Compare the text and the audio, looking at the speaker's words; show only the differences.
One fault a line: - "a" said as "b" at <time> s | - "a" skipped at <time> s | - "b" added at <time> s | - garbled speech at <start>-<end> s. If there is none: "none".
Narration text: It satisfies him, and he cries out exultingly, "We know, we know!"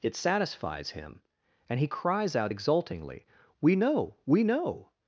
none